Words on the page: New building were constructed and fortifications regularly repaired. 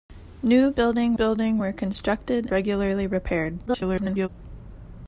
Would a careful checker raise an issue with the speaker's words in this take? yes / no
yes